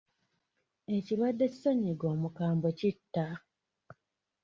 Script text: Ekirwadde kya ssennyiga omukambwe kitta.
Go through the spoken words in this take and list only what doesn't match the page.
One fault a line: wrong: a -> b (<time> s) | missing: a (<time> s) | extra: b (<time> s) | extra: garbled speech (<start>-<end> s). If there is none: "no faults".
missing: kya (1.4 s)